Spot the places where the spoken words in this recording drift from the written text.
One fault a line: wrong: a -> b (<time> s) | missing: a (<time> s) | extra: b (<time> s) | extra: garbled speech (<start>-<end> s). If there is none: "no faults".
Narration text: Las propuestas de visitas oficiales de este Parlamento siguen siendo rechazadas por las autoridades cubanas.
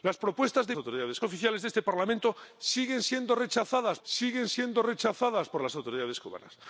wrong: visitas -> autoridades (0.8 s)
extra: siguen siendo rechazadas (4.0 s)